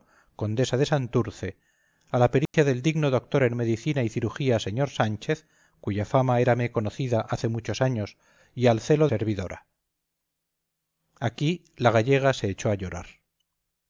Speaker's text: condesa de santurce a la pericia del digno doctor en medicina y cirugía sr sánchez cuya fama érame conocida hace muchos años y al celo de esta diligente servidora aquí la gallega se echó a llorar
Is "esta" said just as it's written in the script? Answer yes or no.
no